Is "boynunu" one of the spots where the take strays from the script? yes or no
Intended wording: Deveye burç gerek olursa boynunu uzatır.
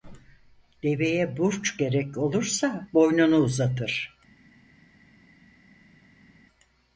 no